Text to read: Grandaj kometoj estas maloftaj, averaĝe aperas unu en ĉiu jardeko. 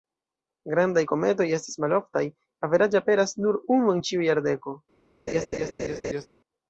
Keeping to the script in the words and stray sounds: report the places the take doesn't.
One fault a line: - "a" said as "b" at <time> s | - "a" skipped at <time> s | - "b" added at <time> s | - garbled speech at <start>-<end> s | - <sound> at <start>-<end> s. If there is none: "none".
- "nur" added at 3.5 s
- laugh at 5.3-6.3 s